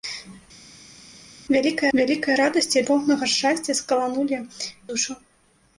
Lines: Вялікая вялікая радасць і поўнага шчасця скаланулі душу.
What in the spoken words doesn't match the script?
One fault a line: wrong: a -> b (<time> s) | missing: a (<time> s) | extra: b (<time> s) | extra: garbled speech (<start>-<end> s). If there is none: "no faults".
no faults